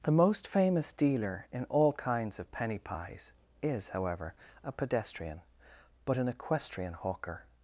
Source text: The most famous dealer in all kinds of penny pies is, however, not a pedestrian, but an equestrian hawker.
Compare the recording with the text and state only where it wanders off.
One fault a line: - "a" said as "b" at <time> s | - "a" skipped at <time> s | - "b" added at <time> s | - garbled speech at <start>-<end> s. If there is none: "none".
- "not" skipped at 4.3 s